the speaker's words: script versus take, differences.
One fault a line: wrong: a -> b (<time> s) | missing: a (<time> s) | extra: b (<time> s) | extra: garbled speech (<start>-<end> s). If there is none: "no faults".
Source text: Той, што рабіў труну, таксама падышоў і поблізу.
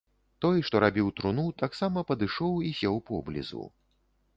extra: сеў (2.8 s)